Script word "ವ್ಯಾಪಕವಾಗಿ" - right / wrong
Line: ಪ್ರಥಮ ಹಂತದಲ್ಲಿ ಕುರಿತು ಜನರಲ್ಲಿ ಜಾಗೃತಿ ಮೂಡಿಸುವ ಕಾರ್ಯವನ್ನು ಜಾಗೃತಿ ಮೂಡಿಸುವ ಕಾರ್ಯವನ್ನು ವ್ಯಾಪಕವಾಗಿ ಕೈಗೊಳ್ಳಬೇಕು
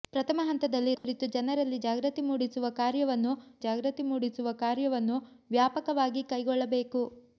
right